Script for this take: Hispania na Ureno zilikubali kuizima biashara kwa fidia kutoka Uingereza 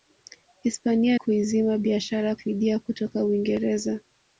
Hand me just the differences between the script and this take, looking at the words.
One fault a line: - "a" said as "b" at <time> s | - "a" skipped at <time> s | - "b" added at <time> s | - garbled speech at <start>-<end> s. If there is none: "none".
- "na Ureno zilikubali" skipped at 1.2 s
- "kwa" skipped at 2.4 s